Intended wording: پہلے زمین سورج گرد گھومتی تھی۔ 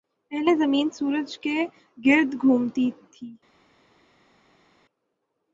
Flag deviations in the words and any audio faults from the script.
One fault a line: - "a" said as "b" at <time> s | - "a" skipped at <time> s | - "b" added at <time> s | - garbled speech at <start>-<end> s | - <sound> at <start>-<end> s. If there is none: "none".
- "کے" added at 1.4 s